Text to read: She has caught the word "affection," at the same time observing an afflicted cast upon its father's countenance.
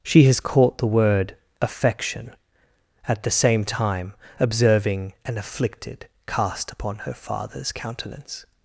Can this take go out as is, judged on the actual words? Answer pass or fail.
fail